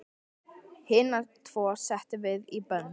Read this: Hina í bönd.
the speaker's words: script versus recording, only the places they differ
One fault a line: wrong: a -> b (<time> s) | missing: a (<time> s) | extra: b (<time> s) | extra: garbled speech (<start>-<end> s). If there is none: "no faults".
extra: tvo settum við (1.5 s)